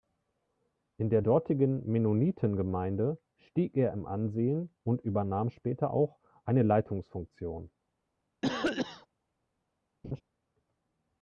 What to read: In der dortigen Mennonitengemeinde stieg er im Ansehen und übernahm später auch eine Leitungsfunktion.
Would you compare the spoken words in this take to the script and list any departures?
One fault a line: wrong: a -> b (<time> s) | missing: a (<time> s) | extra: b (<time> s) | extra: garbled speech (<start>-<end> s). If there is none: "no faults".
no faults